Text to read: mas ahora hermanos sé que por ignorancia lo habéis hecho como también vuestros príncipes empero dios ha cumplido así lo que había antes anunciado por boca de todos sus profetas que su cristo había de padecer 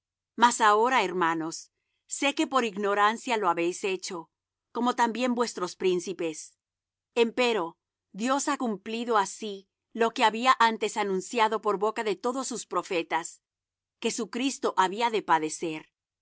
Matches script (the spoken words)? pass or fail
pass